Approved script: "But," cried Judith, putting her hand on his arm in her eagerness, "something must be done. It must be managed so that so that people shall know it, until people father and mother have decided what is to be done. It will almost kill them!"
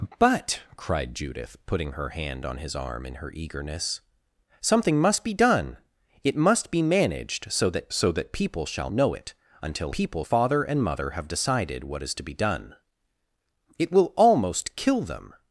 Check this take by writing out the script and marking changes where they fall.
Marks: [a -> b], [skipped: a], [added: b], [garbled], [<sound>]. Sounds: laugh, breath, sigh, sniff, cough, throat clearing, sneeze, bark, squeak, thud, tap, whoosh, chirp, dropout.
"But," cried Judith, putting her hand on his arm in her eagerness, "something must be done. It must be managed so that so that people shall know it, until people father and mother have decided what is to be done. It will almost kill them!"